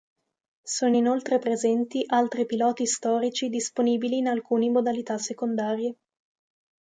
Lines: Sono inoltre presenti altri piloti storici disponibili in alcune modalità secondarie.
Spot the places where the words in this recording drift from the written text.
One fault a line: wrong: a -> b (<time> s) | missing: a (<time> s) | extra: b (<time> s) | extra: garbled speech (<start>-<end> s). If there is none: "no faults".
no faults